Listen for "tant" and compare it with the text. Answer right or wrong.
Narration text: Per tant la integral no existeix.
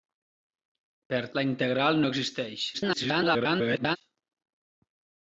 wrong